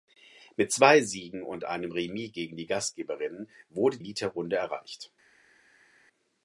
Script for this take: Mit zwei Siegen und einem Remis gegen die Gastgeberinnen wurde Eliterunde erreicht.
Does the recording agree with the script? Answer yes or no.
yes